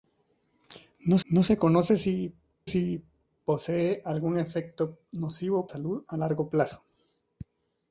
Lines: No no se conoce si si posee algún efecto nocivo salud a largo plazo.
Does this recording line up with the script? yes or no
yes